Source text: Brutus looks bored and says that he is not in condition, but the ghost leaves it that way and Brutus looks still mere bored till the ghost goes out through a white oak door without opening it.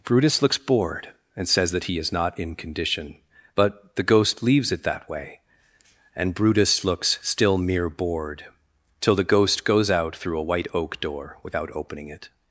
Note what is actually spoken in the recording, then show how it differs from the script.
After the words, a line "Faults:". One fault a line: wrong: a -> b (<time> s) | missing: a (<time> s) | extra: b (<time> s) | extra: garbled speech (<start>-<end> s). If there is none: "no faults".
Brutus looks bored and says that he is not in condition, but the ghost leaves it that way and Brutus looks still mere bored till the ghost goes out through a white oak door without opening it.
Faults:
no faults